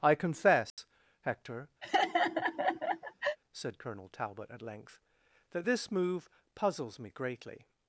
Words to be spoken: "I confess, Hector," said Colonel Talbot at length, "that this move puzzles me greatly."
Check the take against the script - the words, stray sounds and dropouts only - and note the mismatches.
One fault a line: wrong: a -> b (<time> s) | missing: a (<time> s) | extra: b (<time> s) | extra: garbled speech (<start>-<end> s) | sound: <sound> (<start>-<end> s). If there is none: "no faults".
sound: dropout (0.7-0.8 s)
sound: laugh (1.8-3.4 s)